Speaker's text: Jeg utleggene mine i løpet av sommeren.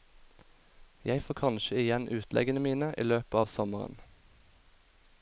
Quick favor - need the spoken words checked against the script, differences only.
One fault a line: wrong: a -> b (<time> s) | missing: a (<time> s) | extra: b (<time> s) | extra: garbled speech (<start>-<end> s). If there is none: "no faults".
extra: får kanskje igjen (1.2 s)